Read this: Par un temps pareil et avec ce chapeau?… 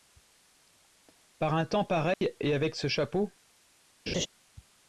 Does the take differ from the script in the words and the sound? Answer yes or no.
yes